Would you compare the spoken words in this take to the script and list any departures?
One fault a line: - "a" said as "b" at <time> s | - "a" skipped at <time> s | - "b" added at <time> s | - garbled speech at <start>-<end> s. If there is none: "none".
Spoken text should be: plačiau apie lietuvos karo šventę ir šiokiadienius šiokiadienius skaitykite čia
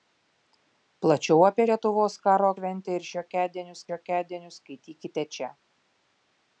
none